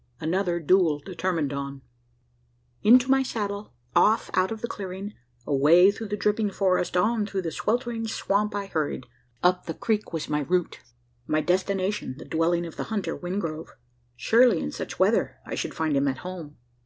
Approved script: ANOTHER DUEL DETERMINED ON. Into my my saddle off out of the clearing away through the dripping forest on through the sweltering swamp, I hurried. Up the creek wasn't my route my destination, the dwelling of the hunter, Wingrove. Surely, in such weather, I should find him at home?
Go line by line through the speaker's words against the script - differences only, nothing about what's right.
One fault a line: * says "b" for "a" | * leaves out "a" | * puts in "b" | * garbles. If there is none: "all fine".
* leaves out "my"
* says "was" for "wasn't"